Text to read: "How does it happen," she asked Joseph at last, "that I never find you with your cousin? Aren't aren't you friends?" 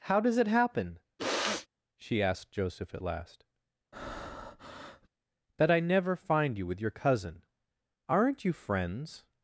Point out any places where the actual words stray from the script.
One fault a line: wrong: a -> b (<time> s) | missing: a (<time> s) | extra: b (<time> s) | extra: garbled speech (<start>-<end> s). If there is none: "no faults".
missing: aren't (8.4 s)